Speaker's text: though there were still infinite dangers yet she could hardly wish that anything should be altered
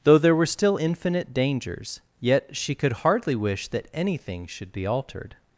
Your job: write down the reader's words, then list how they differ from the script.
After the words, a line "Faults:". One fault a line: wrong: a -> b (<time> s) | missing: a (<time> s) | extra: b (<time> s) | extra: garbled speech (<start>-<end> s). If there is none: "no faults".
though there were still infinite dangers yet she could hardly wish that anything should be altered
Faults:
no faults